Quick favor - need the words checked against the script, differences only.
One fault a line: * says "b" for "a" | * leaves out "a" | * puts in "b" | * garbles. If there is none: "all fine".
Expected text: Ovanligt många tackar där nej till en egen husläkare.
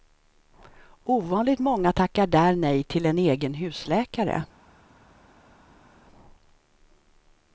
all fine